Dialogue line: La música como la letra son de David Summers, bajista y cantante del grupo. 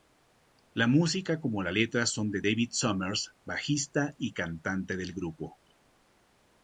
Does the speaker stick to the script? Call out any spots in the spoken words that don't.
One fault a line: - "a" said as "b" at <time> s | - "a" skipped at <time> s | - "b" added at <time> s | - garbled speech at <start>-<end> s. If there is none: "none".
none